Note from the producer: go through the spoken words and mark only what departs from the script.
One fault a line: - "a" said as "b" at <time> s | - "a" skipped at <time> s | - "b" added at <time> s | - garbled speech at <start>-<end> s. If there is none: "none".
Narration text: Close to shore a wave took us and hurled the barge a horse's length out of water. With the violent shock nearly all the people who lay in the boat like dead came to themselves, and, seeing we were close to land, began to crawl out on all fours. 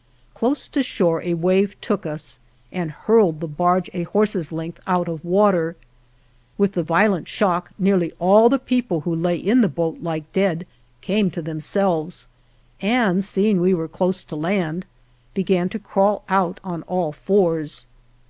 none